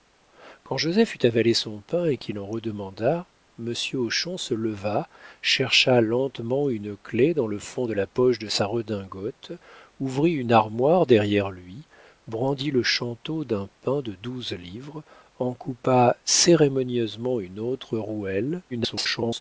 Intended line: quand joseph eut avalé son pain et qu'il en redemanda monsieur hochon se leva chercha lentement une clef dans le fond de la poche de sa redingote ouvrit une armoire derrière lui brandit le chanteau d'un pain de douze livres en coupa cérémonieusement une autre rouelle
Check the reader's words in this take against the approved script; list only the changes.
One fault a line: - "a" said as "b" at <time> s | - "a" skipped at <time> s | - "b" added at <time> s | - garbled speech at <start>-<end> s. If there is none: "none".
- garbled speech at 18.7-19.4 s